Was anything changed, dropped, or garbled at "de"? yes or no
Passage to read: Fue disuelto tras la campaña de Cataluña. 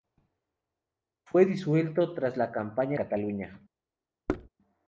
yes